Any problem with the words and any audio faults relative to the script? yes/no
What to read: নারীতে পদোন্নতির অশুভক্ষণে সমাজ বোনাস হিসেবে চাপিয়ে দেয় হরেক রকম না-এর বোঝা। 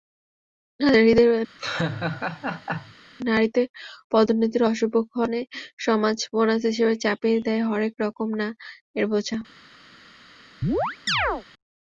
yes